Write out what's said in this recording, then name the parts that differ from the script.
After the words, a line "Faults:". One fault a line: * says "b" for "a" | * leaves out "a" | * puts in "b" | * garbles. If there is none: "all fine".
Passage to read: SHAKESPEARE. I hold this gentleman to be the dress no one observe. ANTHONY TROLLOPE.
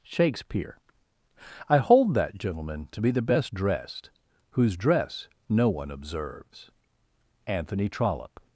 SHAKESPEARE. I hold that gentleman to be the best dressed whose dress no one observes. ANTHONY TROLLOPE.
Faults:
* says "that" for "this"
* puts in "best dressed whose"
* says "observes" for "observe"